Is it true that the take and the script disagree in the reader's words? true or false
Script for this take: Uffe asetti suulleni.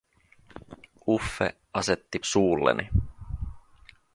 false